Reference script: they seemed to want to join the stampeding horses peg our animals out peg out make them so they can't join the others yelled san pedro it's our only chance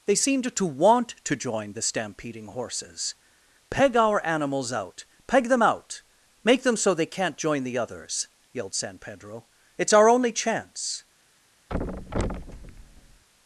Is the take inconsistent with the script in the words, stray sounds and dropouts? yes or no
yes